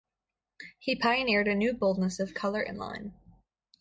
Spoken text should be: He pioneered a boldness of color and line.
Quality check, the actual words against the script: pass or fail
fail